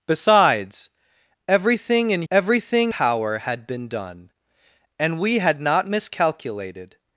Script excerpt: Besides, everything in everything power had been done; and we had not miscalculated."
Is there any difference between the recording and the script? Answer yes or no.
no